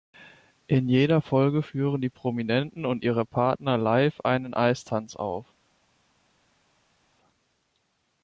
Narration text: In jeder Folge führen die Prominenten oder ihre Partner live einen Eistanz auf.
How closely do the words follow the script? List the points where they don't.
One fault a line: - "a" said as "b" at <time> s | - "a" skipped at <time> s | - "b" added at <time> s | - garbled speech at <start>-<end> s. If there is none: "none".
- "oder" said as "und" at 2.9 s